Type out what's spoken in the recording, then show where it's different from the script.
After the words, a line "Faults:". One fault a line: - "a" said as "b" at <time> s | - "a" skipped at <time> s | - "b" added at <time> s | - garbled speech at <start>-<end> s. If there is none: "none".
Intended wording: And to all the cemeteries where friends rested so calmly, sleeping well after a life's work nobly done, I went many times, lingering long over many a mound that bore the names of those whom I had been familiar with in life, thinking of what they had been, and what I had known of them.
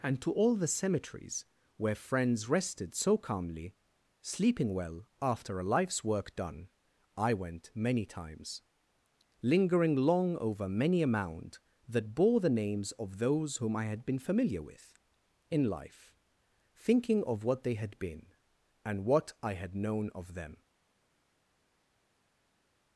And to all the cemeteries where friends rested so calmly, sleeping well after a life's work done, I went many times, lingering long over many a mound that bore the names of those whom I had been familiar with in life, thinking of what they had been, and what I had known of them.
Faults:
- "nobly" skipped at 6.3 s